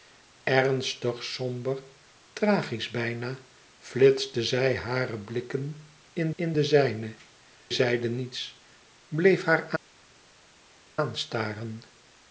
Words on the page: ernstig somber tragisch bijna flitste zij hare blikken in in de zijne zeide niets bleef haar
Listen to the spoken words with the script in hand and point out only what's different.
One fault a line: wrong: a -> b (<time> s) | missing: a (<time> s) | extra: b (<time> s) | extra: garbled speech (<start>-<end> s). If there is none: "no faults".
no faults